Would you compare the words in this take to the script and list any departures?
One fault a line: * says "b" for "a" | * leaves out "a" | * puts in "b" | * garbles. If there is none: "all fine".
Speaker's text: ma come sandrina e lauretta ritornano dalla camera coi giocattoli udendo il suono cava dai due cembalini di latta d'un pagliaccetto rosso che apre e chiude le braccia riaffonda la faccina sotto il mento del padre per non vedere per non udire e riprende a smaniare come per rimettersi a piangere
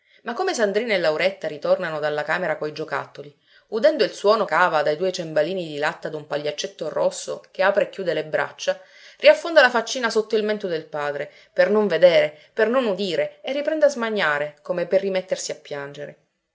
all fine